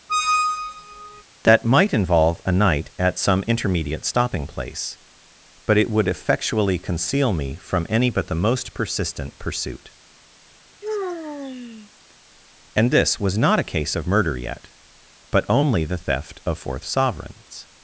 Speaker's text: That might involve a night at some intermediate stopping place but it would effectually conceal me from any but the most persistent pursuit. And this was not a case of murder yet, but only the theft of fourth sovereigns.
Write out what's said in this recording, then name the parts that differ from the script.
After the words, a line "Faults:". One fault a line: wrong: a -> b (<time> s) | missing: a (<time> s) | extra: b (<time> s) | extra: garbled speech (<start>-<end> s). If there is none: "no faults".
That might involve a night at some intermediate stopping place but it would effectually conceal me from any but the most persistent pursuit. And this was not a case of murder yet, but only the theft of fourth sovereigns.
Faults:
no faults